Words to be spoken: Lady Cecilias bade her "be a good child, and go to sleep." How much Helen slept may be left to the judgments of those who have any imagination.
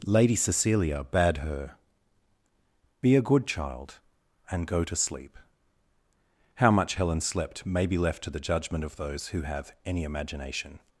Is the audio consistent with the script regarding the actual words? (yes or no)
no